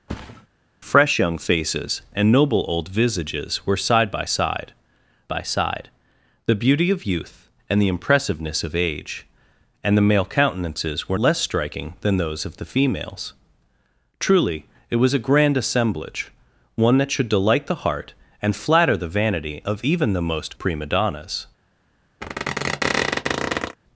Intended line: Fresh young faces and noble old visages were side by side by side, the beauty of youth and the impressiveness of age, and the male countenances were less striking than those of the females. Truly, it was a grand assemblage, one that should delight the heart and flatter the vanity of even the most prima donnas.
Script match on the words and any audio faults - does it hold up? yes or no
no